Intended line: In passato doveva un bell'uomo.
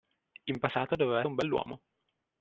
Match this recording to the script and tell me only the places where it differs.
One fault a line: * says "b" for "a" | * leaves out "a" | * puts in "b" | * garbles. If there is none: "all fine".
all fine